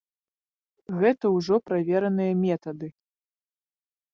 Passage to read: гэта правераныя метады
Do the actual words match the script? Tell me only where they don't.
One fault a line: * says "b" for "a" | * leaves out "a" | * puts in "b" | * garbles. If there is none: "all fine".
* puts in "ўжо"